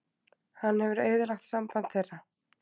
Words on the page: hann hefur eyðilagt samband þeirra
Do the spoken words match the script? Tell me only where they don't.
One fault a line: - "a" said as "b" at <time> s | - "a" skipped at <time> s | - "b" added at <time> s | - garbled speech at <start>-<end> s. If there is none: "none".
none